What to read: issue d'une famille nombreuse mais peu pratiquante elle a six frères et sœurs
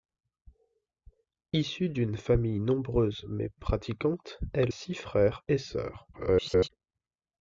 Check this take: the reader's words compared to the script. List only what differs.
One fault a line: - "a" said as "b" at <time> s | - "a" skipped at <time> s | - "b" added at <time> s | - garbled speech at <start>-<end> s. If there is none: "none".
- "peu" skipped at 3.5 s
- "a" skipped at 4.7 s
- garbled speech at 6.1-6.7 s